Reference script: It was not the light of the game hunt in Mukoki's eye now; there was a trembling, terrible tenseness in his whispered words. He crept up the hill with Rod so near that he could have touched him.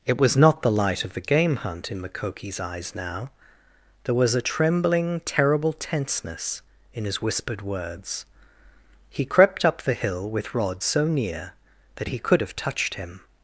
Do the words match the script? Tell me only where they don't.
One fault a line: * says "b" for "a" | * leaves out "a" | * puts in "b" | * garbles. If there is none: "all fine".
* says "eyes" for "eye"